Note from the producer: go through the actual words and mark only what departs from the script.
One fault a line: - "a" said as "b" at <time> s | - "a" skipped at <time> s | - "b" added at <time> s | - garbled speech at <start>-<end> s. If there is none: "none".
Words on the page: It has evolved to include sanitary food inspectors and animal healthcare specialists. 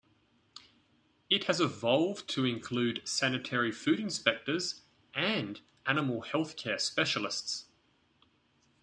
none